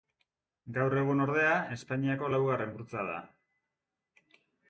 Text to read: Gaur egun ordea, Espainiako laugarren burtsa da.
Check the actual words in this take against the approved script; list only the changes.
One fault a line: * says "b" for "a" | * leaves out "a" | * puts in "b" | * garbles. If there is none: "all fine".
all fine